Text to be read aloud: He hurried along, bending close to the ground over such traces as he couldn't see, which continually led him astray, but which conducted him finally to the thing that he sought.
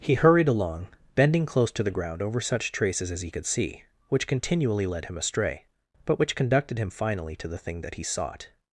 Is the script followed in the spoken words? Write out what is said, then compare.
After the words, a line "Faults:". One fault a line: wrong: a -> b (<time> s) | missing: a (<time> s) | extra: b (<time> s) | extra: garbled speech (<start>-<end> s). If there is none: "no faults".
He hurried along, bending close to the ground over such traces as he could see, which continually led him astray, but which conducted him finally to the thing that he sought.
Faults:
wrong: couldn't -> could (3.3 s)